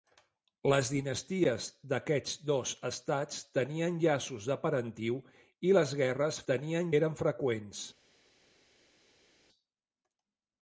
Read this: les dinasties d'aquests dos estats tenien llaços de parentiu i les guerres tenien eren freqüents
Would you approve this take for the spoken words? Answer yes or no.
yes